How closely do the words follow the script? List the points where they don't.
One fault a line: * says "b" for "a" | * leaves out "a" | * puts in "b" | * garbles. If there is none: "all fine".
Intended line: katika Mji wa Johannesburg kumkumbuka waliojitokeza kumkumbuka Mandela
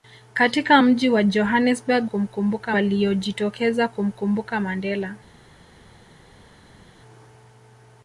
all fine